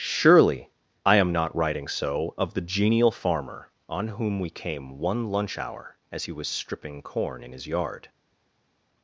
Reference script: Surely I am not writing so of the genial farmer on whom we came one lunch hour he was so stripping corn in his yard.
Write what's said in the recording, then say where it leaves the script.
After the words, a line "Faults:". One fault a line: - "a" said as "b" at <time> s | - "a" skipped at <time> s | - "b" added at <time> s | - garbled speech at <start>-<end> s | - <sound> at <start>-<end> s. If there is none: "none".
Surely I am not writing so of the genial farmer on whom we came one lunch hour as he was stripping corn in his yard.
Faults:
- "as" added at 6.1 s
- "so" skipped at 6.5 s